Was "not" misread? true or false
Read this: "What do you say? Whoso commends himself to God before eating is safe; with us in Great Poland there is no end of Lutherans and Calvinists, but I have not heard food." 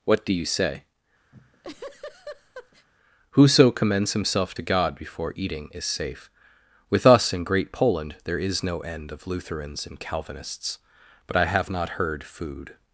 false